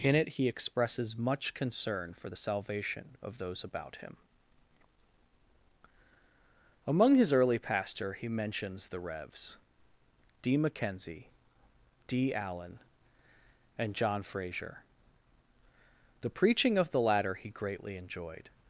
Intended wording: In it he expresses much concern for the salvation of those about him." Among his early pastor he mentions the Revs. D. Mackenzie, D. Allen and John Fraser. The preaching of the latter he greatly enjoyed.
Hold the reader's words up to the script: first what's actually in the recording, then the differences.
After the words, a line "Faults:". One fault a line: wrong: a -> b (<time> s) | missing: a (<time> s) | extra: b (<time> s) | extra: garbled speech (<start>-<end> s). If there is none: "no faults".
In it he expresses much concern for the salvation of those about him." Among his early pastor he mentions the Revs. D. Mackenzie, D. Allen and John Fraser. The preaching of the latter he greatly enjoyed.
Faults:
no faults